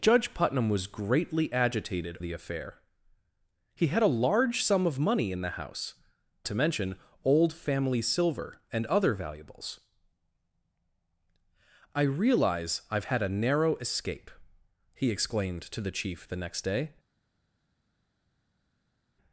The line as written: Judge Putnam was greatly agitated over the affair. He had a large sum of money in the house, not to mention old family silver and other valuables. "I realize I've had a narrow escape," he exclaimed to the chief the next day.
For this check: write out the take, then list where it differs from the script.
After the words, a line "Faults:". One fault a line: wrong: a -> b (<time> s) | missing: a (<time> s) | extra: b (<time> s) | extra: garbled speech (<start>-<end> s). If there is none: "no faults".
Judge Putnam was greatly agitated the affair. He had a large sum of money in the house, to mention old family silver and other valuables. "I realize I've had a narrow escape," he exclaimed to the chief the next day.
Faults:
missing: over (2.2 s)
missing: not (5.9 s)